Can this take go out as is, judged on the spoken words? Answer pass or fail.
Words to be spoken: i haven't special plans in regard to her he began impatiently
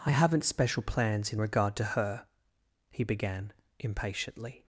pass